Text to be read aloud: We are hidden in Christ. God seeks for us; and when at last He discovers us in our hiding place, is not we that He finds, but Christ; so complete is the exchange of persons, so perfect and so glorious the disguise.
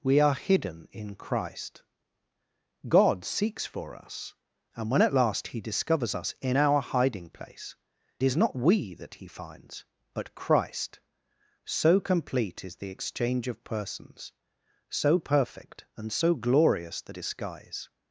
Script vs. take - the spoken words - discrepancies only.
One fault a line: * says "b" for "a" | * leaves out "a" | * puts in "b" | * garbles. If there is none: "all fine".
all fine